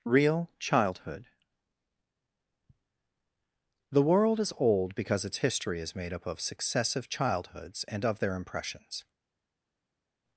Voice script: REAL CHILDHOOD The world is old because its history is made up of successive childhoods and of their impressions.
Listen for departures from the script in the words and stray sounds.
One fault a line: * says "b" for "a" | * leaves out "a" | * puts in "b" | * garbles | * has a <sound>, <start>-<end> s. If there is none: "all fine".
all fine